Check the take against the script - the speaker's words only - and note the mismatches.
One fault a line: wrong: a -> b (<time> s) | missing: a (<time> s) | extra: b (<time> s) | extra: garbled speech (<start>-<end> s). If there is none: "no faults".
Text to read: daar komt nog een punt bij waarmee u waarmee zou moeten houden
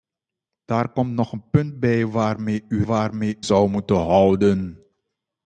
no faults